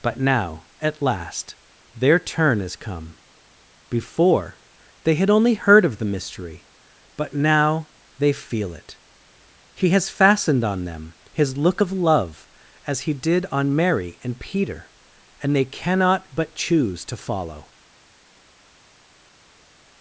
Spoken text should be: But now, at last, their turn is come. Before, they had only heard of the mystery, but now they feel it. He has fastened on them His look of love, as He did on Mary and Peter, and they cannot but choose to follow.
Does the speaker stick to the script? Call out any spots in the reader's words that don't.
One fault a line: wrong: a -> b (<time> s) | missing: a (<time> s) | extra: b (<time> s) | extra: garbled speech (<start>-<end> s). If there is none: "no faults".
no faults